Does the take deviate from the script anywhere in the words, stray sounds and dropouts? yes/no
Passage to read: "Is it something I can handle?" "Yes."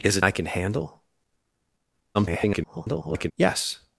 yes